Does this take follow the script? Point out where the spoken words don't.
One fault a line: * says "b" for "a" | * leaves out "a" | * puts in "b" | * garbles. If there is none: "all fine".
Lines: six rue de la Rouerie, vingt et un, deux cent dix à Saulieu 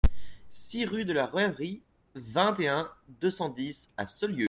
all fine